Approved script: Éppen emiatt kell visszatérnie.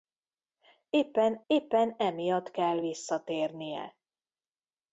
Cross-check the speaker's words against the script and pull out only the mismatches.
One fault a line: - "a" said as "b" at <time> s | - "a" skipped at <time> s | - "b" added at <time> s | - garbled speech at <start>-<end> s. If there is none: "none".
- "éppen" added at 1.5 s